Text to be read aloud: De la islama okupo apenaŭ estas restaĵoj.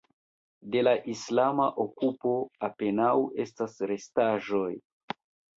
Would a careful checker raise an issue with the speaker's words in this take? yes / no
no